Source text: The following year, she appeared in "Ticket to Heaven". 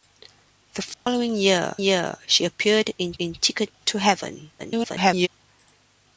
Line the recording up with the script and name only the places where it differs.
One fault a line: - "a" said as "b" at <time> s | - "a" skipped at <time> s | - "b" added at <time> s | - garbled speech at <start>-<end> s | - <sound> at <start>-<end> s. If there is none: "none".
- dropout at 0.9-1.1 s
- "year" added at 1.8 s
- "in" added at 3.2 s
- garbled speech at 4.6-5.3 s